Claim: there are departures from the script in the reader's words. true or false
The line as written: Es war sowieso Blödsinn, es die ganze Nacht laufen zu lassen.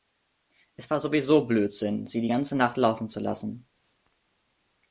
true